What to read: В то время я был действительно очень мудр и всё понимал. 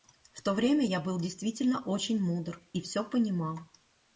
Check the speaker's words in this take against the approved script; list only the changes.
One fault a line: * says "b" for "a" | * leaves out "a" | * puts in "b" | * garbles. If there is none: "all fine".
all fine